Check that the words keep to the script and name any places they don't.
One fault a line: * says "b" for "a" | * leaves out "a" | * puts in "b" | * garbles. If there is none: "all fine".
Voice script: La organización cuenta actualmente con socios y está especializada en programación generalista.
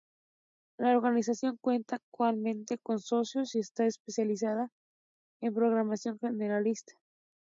all fine